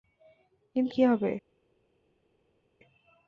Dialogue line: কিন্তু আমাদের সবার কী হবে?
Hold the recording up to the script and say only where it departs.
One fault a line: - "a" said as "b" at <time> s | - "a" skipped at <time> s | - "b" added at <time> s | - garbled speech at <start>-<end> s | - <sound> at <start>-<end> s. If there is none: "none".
- "আমাদের সবার" skipped at 0.9 s